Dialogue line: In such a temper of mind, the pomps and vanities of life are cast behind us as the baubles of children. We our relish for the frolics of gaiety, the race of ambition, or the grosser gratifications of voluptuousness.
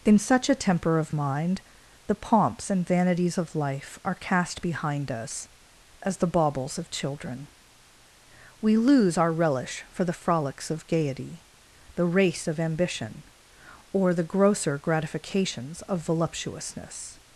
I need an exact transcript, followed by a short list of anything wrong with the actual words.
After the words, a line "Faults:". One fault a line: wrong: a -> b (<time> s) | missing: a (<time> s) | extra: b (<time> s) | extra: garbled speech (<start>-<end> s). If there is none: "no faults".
In such a temper of mind, the pomps and vanities of life are cast behind us as the baubles of children. We lose our relish for the frolics of gaiety, the race of ambition, or the grosser gratifications of voluptuousness.
Faults:
extra: lose (8.8 s)